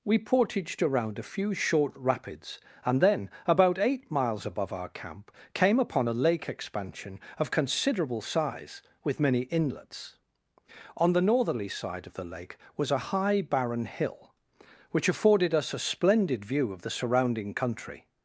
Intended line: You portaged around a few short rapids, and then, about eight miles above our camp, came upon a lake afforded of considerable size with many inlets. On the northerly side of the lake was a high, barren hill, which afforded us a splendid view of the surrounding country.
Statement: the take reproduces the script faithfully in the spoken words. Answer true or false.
false